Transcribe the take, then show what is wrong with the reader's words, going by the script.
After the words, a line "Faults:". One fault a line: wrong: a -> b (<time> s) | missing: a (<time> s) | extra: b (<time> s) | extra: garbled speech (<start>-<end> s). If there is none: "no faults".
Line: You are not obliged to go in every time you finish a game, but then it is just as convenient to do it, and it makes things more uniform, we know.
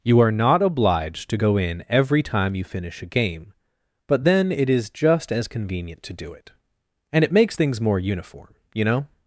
You are not obliged to go in every time you finish a game, but then it is just as convenient to do it, and it makes things more uniform, you know.
Faults:
wrong: we -> you (8.7 s)